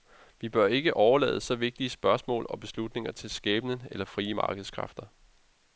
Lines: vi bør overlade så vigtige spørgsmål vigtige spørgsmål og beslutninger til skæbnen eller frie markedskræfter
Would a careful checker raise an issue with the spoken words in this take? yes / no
yes